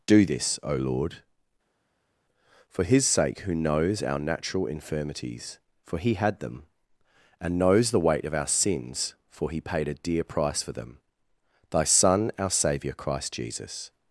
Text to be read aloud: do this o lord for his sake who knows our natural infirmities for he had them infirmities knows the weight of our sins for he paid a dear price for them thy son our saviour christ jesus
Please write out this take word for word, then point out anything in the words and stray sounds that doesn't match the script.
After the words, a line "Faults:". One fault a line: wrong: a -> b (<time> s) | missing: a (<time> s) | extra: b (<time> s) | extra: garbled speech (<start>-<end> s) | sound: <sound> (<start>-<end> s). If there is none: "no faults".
do this o lord for his sake who knows our natural infirmities for he had them and knows the weight of our sins for he paid a dear price for them thy son our saviour christ jesus
Faults:
wrong: infirmities -> and (7.4 s)